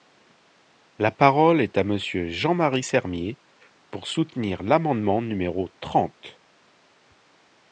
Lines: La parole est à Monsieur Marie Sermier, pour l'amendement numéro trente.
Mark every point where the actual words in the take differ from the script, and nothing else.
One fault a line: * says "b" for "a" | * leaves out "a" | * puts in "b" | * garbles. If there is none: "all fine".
* puts in "Jean"
* puts in "soutenir"